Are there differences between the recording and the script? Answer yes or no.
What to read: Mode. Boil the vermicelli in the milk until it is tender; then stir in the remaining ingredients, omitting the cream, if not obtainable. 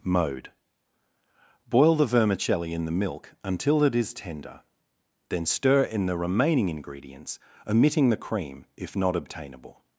no